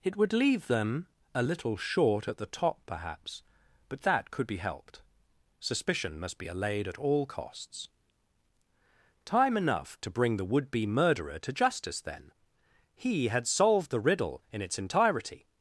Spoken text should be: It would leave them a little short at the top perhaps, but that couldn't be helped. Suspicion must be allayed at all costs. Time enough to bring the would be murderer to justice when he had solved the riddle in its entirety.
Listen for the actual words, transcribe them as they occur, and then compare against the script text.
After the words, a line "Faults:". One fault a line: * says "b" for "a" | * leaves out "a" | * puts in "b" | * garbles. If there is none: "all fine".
It would leave them a little short at the top perhaps, but that could be helped. Suspicion must be allayed at all costs. Time enough to bring the would be murderer to justice then he had solved the riddle in its entirety.
Faults:
* says "could" for "couldn't"
* says "then" for "when"